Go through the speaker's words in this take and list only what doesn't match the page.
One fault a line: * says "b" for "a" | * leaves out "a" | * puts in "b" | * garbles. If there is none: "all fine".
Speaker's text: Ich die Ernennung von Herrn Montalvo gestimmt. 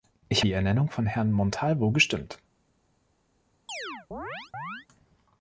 all fine